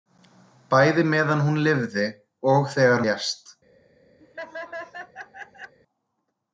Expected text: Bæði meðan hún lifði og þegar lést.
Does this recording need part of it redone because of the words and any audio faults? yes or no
yes